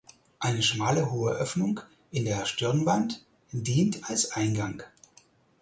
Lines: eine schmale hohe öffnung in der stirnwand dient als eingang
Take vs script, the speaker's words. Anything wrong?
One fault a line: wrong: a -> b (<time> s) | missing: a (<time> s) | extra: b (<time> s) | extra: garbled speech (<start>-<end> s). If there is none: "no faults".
no faults